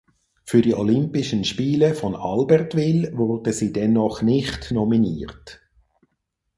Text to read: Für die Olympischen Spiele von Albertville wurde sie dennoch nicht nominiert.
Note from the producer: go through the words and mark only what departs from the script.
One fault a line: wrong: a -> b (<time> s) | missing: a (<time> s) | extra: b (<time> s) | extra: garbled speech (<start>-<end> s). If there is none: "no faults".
no faults